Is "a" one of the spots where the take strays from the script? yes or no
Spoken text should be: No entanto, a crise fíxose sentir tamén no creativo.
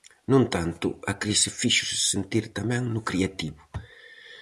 no